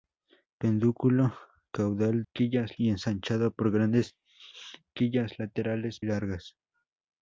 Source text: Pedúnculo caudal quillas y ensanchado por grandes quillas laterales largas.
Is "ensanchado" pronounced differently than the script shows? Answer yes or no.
no